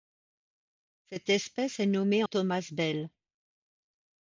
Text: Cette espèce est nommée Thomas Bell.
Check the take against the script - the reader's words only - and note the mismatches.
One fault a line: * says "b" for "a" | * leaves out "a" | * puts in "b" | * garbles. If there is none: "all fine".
all fine